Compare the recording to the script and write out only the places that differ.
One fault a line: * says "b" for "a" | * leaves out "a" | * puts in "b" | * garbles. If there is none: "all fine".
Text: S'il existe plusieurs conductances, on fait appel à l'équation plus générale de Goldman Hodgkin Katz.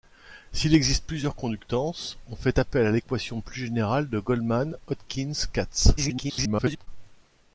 * garbles